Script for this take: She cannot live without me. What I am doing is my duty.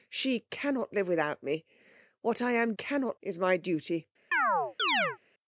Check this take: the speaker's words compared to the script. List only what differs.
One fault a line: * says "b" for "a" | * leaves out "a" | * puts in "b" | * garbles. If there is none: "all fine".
* says "cannot" for "doing"